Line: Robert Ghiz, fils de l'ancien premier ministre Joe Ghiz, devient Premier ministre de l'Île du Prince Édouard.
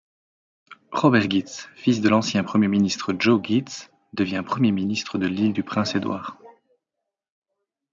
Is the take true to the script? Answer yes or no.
yes